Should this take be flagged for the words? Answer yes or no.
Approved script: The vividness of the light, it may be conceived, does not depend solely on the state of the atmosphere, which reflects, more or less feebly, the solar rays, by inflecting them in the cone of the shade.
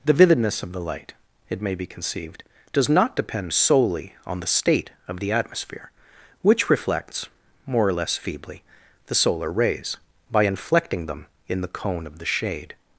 no